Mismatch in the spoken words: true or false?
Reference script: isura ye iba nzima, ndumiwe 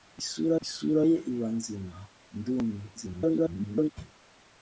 true